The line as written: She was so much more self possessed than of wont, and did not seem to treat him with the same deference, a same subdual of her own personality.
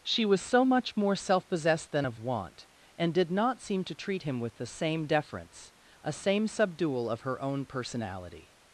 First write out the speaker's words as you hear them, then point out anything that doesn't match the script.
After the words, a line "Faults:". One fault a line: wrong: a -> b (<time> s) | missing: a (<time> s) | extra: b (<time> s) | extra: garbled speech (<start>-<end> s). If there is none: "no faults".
She was so much more self possessed than of wont, and did not seem to treat him with the same deference, a same subdual of her own personality.
Faults:
no faults